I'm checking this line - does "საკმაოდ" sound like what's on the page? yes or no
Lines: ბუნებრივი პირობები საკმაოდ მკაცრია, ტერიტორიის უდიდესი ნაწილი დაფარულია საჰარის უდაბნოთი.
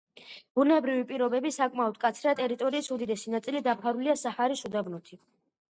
yes